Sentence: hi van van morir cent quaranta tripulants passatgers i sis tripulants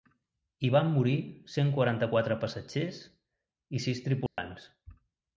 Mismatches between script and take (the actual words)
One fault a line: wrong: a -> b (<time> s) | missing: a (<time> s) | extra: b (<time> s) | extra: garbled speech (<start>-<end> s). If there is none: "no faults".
missing: van (0.9 s)
wrong: tripulants -> quatre (2.1 s)